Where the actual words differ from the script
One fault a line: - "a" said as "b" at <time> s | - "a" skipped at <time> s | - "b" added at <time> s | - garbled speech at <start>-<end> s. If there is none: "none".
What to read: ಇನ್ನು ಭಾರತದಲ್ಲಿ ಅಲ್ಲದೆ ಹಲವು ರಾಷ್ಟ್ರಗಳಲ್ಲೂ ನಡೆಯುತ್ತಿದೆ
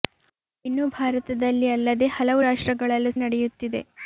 none